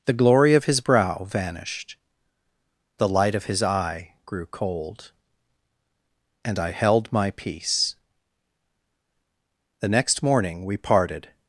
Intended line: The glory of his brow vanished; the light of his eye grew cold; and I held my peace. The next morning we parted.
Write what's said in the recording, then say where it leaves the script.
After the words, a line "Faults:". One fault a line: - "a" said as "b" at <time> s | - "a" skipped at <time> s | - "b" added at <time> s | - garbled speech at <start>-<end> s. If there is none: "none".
The glory of his brow vanished; the light of his eye grew cold; and I held my peace. The next morning we parted.
Faults:
none